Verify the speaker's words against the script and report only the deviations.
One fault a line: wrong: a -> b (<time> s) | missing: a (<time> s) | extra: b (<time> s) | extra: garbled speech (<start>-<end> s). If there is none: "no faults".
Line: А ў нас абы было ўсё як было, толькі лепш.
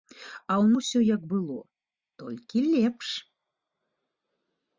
missing: нас абы было (0.7 s)